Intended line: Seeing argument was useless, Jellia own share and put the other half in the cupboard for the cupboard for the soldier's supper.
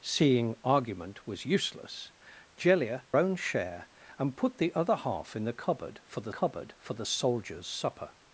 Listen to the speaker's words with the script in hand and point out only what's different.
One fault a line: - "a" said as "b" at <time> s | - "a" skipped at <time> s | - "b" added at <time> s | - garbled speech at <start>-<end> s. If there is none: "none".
none